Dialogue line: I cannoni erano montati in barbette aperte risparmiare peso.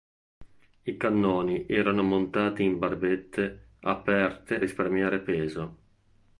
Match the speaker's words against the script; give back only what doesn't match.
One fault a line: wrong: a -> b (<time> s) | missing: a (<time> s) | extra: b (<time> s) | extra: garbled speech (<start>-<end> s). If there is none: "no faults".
no faults